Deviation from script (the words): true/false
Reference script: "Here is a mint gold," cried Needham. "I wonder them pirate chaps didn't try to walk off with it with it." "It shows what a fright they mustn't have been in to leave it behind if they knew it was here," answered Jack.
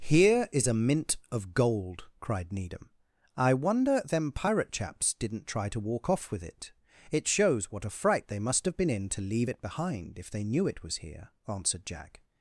true